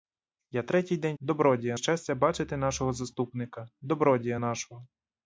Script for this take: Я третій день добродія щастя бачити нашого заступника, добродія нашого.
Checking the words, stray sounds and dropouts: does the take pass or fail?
pass